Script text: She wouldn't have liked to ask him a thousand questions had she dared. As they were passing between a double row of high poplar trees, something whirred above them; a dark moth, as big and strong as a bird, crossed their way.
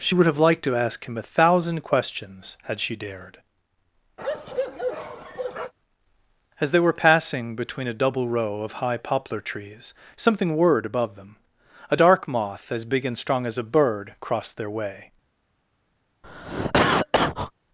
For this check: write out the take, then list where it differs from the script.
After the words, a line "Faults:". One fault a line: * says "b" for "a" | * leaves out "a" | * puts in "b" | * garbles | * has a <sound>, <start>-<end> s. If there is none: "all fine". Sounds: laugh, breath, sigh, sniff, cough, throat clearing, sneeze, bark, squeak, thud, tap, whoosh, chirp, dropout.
She would have liked to ask him a thousand questions had she dared. As they were passing between a double row of high poplar trees, something whirred above them; a dark moth, as big and strong as a bird, crossed their way.
Faults:
* says "would" for "wouldn't"
* has a bark, 4.2-5.7 s
* has a cough, 16.2-17.5 s